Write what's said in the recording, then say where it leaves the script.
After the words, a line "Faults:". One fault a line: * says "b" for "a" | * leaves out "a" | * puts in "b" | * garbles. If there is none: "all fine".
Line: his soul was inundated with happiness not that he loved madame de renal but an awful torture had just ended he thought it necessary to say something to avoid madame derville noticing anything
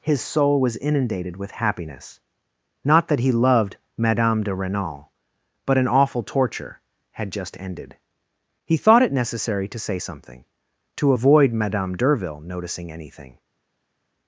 his soul was inundated with happiness not that he loved madame de renal but an awful torture had just ended he thought it necessary to say something to avoid madame derville noticing anything
Faults:
all fine